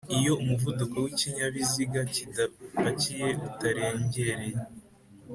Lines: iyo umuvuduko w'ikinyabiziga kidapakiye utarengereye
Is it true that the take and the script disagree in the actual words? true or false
false